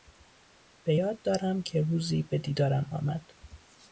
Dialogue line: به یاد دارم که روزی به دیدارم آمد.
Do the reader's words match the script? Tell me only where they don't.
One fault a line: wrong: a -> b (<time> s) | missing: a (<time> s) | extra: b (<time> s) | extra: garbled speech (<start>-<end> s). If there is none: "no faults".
no faults